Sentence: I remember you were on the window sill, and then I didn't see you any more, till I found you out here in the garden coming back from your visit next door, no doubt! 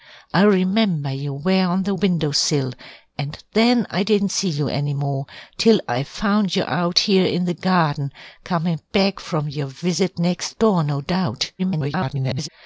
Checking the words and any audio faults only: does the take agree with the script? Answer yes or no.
no